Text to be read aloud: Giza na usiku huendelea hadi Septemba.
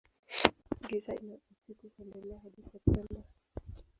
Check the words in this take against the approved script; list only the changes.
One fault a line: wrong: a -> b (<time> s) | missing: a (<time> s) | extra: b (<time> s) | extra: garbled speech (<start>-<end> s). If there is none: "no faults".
no faults